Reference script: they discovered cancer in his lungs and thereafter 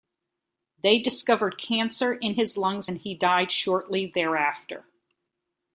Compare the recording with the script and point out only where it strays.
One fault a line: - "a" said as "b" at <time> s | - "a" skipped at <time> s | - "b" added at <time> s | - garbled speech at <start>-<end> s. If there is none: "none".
- "he died shortly" added at 3.0 s